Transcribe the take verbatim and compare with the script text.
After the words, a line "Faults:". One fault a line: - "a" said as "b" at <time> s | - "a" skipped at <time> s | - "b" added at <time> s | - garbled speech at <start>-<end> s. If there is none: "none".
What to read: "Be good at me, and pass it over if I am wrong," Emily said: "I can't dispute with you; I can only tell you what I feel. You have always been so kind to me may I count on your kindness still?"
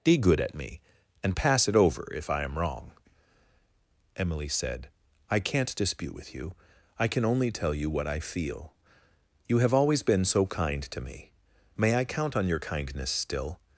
"Be good at me, and pass it over if I am wrong," Emily said: "I can't dispute with you; I can only tell you what I feel. You have always been so kind to me may I count on your kindness still?"
Faults:
none